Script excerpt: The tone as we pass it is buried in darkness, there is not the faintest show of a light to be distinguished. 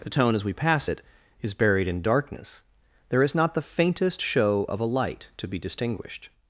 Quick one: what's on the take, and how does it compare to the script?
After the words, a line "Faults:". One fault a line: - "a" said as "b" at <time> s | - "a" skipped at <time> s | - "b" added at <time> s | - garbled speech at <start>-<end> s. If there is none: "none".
The tone as we pass it is buried in darkness, there is not the faintest show of a light to be distinguished.
Faults:
none